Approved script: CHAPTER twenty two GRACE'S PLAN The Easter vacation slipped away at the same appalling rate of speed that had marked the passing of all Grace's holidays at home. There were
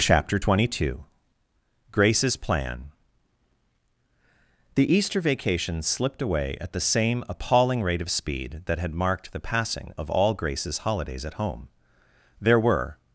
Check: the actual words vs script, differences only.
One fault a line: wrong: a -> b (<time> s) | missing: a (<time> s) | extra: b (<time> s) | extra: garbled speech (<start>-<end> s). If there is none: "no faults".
no faults